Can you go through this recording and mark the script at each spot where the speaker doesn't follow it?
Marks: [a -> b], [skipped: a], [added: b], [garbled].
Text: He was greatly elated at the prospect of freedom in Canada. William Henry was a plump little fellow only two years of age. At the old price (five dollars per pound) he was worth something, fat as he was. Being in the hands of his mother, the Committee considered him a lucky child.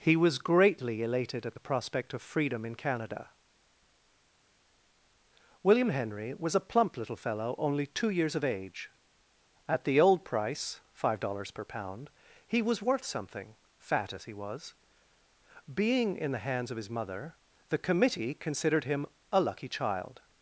He was greatly elated at the prospect of freedom in Canada. William Henry was a plump little fellow only two years of age. At the old price (five dollars per pound) he was worth something, fat as he was. Being in the hands of his mother, the Committee considered him a lucky child.